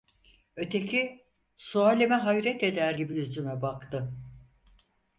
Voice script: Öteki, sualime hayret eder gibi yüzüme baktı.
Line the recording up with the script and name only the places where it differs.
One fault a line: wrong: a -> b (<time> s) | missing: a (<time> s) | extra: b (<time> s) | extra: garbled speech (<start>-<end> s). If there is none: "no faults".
no faults